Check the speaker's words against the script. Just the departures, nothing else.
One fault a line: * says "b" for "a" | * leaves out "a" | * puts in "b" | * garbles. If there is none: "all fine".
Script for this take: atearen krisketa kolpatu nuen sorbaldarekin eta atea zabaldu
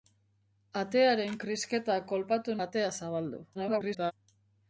* leaves out "nuen sorbaldarekin eta"
* garbles